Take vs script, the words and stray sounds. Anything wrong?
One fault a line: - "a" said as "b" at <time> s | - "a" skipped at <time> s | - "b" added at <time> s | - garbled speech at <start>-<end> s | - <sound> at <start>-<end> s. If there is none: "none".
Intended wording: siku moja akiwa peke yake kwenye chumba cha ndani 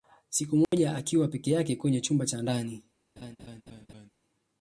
- dropout at 0.6-0.7 s
- laugh at 3.2-4.1 s